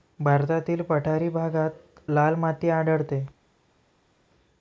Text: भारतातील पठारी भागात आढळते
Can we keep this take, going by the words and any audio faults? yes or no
no